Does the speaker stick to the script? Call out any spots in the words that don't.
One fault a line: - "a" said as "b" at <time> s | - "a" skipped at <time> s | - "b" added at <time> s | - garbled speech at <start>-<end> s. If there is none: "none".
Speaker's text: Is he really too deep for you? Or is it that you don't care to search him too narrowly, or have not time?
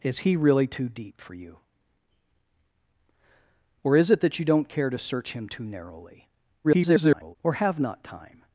- garbled speech at 6.6-7.4 s